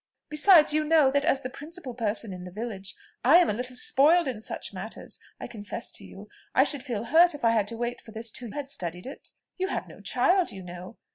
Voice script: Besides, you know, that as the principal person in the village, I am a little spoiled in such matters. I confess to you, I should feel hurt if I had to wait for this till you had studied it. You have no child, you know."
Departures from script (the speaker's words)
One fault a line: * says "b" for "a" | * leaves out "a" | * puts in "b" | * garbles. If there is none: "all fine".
* leaves out "you"